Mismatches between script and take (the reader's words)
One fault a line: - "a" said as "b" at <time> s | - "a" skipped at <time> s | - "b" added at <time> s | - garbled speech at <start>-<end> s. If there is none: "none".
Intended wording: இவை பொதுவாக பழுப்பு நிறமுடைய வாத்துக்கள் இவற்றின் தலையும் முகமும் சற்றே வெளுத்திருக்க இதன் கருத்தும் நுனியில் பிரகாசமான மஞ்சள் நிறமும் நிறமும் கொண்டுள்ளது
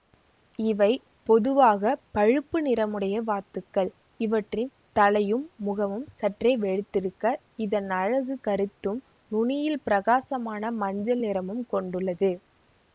- "அலகு" added at 8.0 s
- "நிறமும்" skipped at 11.6 s